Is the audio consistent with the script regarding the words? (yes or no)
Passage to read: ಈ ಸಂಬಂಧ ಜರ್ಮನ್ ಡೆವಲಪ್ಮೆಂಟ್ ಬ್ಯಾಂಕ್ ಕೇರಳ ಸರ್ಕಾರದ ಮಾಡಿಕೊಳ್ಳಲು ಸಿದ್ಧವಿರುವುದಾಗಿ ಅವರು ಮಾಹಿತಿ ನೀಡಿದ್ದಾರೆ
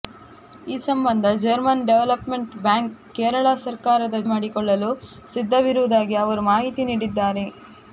yes